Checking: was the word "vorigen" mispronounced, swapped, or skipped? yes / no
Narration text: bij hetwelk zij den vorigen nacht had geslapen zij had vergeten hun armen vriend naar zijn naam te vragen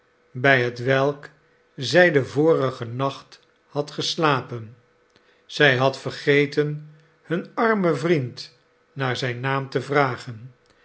no